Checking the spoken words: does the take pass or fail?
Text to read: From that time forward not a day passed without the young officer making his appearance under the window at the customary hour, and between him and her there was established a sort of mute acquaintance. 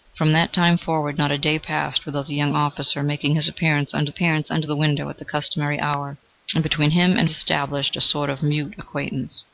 fail